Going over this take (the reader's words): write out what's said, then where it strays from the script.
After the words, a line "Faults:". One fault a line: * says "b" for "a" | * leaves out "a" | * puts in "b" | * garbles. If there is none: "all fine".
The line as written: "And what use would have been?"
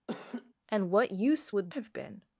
"And what use would have been?"
Faults:
all fine